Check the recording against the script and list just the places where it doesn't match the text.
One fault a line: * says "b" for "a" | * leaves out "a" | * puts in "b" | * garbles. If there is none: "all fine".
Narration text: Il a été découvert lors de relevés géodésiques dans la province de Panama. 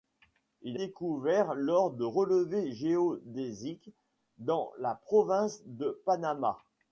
* leaves out "a été"